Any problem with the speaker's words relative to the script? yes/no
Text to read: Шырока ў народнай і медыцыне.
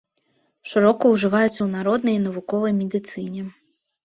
yes